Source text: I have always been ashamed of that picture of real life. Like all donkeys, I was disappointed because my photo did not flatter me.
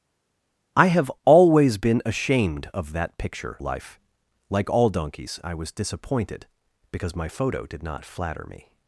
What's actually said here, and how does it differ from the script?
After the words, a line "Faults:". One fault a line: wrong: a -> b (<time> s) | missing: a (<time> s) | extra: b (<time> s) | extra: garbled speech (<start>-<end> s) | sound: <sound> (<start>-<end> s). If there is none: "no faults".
I have always been ashamed of that picture life. Like all donkeys, I was disappointed because my photo did not flatter me.
Faults:
missing: of real (3.6 s)